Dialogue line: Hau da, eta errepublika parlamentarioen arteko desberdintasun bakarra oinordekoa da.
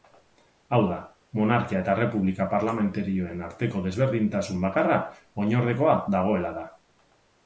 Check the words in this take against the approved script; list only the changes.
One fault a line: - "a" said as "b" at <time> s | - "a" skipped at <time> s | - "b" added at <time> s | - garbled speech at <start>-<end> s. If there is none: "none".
- "monarkia" added at 1.4 s
- "dagoela" added at 6.2 s